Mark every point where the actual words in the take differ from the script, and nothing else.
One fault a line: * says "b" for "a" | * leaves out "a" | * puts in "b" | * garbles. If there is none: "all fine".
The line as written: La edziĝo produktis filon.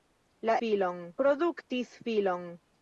* says "filon" for "edziĝo"